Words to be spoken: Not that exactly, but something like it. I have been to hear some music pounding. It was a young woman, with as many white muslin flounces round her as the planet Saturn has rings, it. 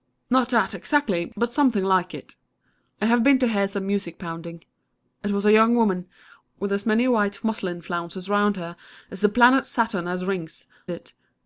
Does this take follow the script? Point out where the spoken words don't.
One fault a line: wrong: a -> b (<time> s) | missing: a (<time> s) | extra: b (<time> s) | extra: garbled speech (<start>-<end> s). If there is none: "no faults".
no faults